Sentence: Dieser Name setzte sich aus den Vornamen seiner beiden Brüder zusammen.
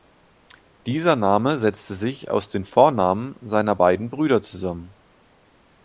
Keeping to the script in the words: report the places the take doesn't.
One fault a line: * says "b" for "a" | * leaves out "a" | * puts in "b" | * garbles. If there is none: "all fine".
all fine